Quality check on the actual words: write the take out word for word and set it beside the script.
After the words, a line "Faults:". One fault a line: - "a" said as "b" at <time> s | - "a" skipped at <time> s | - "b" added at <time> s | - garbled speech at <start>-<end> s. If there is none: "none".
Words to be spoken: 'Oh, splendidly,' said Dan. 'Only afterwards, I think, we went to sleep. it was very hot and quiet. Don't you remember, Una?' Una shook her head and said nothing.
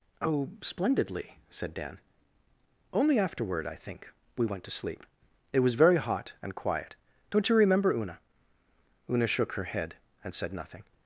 'Oh, splendidly,' said Dan. 'Only afterward, I think, we went to sleep. it was very hot and quiet. Don't you remember, Una?' Una shook her head and said nothing.
Faults:
- "afterwards" said as "afterward" at 3.2 s